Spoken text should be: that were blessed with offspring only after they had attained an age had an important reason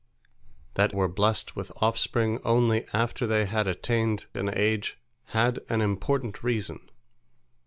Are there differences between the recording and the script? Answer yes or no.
no